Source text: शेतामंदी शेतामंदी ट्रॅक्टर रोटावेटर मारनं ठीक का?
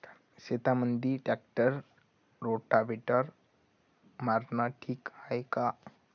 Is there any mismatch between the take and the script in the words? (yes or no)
yes